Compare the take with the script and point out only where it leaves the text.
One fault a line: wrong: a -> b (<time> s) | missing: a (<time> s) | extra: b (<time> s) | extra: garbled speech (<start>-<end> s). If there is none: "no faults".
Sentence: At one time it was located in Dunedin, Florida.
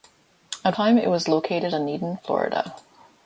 missing: one (0.8 s)
missing: in (1.7 s)